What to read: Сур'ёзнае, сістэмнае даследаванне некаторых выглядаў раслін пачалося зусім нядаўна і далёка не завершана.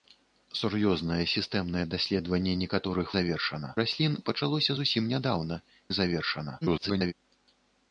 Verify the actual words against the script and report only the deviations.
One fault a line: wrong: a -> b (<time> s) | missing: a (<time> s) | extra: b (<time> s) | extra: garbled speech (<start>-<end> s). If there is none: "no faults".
wrong: выглядаў -> завершана (3.2 s)
missing: і далёка (5.6 s)
extra: garbled speech (6.6-7.1 s)